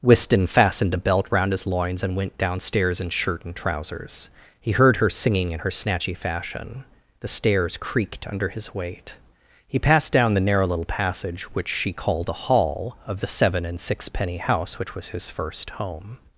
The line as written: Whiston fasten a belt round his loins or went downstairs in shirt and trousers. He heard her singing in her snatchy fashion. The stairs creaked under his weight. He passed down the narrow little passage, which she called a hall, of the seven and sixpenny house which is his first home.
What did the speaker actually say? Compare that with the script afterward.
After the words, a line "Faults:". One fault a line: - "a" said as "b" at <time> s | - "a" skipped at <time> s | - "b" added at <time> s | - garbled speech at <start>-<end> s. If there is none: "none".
Whiston fastened a belt round his loins and went downstairs in shirt and trousers. He heard her singing in her snatchy fashion. The stairs creaked under his weight. He passed down the narrow little passage, which she called a hall, of the seven and sixpenny house which was his first home.
Faults:
- "fasten" said as "fastened" at 0.5 s
- "or" said as "and" at 2.0 s
- "is" said as "was" at 14.9 s